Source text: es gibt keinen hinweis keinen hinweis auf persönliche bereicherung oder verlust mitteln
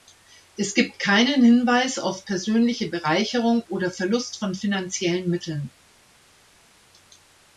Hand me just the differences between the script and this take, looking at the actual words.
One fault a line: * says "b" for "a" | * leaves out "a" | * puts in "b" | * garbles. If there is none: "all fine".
* leaves out "keinen hinweis"
* puts in "von finanziellen"